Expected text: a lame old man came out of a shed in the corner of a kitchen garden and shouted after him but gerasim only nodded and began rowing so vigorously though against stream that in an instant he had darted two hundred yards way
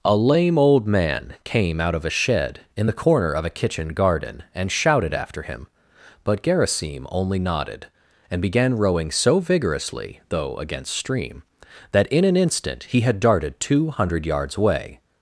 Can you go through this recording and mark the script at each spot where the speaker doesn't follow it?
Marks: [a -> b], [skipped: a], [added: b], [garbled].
a lame old man came out of a shed in the corner of a kitchen garden and shouted after him but gerasim only nodded and began rowing so vigorously though against stream that in an instant he had darted two hundred yards [way -> away]